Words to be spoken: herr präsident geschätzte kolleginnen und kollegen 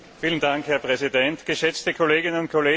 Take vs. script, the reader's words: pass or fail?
pass